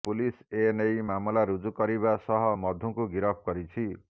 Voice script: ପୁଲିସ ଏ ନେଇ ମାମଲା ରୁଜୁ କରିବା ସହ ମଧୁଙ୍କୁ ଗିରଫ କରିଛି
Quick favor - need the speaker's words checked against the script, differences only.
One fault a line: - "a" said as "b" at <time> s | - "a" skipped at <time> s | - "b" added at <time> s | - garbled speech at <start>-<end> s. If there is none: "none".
none